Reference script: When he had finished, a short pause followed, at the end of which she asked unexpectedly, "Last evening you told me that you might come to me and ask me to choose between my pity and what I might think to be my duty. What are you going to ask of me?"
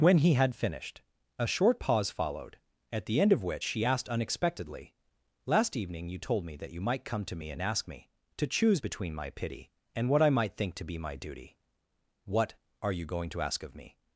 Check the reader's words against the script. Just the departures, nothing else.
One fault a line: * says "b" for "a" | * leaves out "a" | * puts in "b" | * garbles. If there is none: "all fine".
all fine